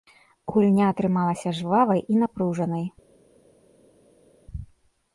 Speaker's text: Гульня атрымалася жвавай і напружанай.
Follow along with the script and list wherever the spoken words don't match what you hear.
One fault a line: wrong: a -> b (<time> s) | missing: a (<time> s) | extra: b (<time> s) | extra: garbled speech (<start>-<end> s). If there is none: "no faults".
no faults